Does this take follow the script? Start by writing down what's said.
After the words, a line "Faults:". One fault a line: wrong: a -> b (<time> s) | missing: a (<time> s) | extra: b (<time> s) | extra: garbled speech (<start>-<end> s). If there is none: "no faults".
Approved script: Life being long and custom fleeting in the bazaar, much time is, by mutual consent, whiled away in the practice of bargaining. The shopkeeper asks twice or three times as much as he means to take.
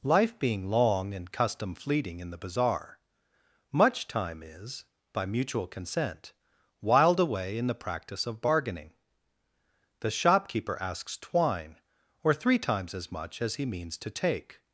Life being long and custom fleeting in the bazaar, much time is, by mutual consent, whiled away in the practice of bargaining. The shopkeeper asks twine or three times as much as he means to take.
Faults:
wrong: twice -> twine (11.2 s)